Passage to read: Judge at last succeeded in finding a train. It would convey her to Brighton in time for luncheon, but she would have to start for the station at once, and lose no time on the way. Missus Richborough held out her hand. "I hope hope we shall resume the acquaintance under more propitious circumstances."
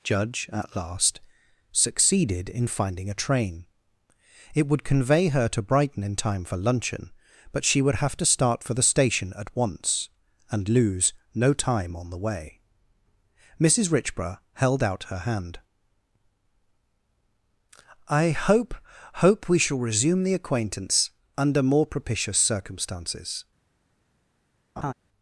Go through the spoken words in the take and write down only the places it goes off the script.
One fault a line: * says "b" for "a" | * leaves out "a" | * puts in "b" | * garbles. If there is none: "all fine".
all fine